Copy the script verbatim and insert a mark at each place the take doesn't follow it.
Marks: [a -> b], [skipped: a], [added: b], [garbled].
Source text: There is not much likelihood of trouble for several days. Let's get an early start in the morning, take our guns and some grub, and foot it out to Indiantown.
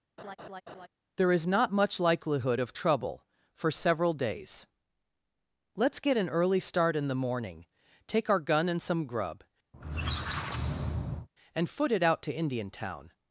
There is not much likelihood of trouble for several days. Let's get an early start in the morning, take our [guns -> gun] and some grub, and foot it out to Indiantown.